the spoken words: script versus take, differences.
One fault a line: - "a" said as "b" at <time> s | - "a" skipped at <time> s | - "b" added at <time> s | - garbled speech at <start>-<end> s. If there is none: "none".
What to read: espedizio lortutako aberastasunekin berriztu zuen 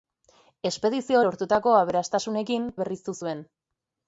none